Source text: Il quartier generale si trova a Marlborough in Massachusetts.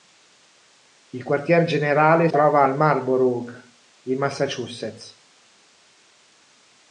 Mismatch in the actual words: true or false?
true